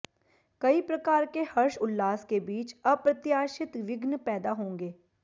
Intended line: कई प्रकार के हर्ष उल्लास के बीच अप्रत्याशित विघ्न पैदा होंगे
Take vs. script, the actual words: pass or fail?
pass